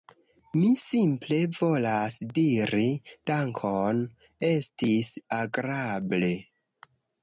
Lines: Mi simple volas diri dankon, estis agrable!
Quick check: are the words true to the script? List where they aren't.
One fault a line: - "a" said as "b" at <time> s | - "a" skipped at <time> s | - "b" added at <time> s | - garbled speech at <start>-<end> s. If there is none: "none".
none